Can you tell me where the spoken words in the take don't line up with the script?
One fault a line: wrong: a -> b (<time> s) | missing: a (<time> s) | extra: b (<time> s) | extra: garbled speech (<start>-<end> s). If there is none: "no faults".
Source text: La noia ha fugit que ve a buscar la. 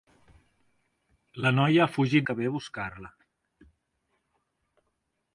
no faults